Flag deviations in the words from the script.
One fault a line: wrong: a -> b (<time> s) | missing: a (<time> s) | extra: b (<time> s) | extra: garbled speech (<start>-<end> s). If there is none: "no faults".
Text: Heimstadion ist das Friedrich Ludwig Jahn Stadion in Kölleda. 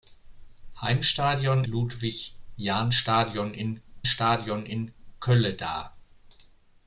wrong: ist das Friedrich Ludwig Jahn -> Ludwig Jahn Stadion in (1.7 s)